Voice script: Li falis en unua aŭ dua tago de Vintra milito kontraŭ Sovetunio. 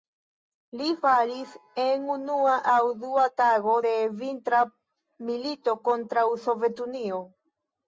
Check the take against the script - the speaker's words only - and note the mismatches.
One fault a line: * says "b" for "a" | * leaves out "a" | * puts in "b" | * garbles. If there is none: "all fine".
all fine